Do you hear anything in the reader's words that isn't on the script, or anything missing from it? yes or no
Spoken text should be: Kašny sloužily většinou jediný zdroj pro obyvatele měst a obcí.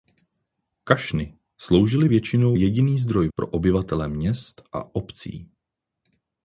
no